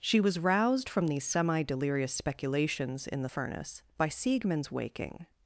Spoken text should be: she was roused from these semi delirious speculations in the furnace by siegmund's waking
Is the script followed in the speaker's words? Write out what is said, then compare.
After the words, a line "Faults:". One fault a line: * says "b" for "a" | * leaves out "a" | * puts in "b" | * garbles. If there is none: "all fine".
she was roused from these semi delirious speculations in the furnace by siegmund's waking
Faults:
all fine